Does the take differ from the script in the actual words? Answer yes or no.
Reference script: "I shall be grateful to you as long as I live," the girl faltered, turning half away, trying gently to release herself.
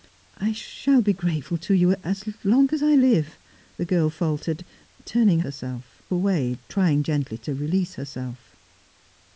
yes